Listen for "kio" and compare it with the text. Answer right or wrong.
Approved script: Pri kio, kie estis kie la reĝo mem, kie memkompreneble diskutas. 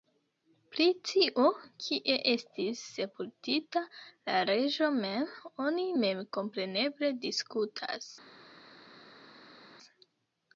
wrong